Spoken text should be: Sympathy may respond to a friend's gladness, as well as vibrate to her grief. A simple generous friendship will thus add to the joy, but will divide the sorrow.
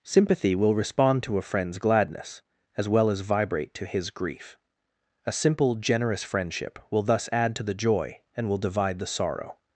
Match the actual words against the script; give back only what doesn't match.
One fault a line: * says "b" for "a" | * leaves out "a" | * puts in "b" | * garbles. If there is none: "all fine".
* says "will" for "may"
* says "his" for "her"
* says "and" for "but"